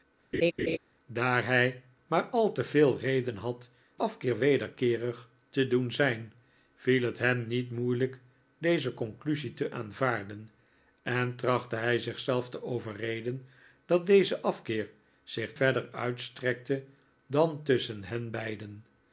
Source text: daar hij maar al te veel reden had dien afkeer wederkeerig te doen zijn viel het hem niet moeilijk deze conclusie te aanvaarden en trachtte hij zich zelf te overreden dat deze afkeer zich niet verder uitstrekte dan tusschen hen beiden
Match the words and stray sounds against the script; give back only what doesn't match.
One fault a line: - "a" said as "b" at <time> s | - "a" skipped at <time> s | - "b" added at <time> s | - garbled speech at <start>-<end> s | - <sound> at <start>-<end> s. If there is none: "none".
- laugh at 0.3-0.8 s
- "dien" skipped at 3.7 s
- "niet" skipped at 15.6 s